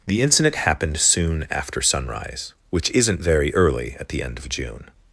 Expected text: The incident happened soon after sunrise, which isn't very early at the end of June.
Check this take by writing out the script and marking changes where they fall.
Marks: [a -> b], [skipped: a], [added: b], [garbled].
The incident happened soon after sunrise, which isn't very early at the end of June.